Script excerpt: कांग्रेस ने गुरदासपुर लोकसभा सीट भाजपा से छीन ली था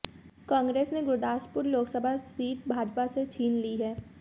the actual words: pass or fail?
fail